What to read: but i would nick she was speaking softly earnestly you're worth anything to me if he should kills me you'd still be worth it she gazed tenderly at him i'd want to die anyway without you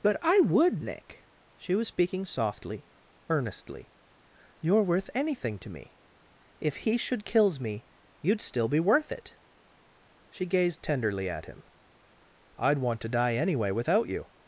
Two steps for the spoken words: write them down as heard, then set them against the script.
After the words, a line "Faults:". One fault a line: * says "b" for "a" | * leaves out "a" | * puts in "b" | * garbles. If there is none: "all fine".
but i would nick she was speaking softly earnestly you're worth anything to me if he should kills me you'd still be worth it she gazed tenderly at him i'd want to die anyway without you
Faults:
all fine